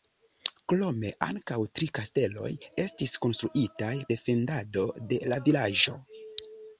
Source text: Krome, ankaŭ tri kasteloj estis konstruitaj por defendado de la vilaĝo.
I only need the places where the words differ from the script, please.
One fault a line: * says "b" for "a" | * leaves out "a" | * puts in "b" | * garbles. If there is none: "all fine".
* leaves out "por"